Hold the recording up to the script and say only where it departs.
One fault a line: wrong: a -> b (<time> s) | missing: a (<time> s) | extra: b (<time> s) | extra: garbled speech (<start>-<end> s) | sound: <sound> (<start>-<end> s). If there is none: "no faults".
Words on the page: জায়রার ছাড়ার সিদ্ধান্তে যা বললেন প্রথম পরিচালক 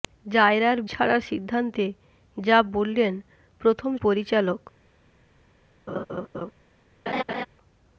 sound: laugh (5.9-6.5 s)
sound: laugh (7.1-7.5 s)